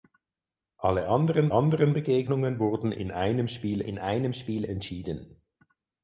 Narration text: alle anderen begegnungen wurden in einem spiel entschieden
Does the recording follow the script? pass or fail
fail